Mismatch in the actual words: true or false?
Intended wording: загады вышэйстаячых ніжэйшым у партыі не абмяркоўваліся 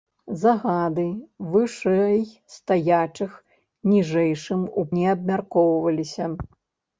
true